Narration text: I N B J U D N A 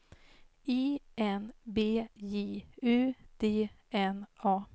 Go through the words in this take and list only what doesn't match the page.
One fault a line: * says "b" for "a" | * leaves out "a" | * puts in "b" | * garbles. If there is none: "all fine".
all fine